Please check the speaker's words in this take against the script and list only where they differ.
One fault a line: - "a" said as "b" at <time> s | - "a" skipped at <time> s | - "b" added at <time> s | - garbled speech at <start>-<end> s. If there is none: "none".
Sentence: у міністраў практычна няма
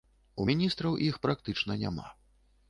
- "іх" added at 1.1 s